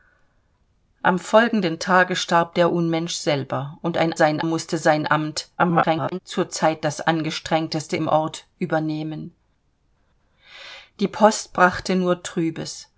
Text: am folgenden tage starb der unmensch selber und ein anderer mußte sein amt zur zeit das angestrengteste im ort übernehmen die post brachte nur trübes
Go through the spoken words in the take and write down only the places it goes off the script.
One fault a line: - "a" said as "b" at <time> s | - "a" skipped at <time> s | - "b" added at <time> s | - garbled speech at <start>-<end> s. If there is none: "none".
- "anderer" said as "sein" at 4.1 s
- garbled speech at 5.6-6.2 s